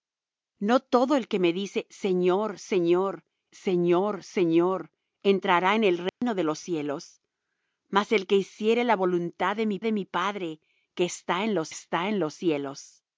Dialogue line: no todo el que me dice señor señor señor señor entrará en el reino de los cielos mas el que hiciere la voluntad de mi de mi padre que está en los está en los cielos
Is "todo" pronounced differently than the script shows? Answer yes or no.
no